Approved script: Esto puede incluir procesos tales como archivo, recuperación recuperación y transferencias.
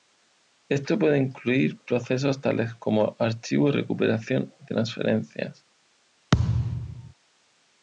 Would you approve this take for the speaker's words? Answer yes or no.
no